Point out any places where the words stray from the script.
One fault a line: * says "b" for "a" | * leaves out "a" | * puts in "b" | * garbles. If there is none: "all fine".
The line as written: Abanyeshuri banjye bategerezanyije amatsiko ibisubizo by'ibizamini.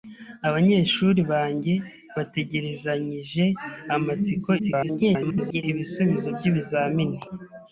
* garbles